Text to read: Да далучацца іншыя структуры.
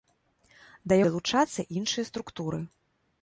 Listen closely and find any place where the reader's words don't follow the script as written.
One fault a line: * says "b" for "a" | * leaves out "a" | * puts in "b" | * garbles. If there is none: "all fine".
all fine